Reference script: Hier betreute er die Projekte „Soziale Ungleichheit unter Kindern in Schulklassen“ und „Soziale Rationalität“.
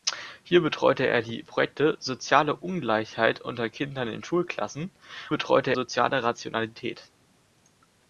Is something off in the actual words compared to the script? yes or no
yes